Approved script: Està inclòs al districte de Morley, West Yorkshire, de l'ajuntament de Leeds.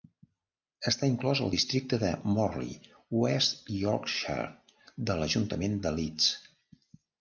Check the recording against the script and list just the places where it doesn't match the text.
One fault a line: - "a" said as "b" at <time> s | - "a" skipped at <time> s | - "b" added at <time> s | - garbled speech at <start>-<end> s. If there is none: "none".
none